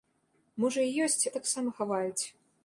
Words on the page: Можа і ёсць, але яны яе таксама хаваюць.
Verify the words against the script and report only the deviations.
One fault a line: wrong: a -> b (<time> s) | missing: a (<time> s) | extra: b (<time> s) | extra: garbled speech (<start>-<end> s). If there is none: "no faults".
missing: але яны яе (1.2 s)